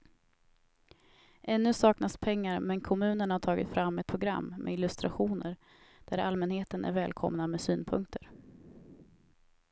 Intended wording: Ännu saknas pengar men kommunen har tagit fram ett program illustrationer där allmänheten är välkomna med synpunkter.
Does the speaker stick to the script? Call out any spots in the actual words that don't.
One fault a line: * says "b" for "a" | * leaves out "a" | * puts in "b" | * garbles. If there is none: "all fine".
* puts in "med"